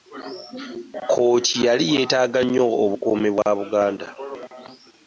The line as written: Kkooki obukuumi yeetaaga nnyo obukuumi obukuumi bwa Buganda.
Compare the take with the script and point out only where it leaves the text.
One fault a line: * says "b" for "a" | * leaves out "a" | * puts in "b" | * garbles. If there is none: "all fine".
* says "yali" for "obukuumi"
* leaves out "obukuumi"